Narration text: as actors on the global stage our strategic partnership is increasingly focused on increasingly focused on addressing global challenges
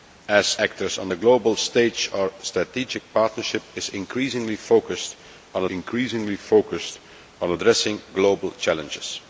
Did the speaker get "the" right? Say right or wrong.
right